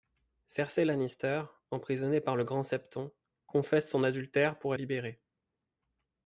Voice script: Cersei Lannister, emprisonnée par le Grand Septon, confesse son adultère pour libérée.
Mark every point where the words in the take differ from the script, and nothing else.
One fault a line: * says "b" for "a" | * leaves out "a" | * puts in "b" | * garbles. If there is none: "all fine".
all fine